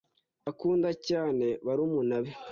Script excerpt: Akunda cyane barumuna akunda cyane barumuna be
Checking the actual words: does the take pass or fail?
fail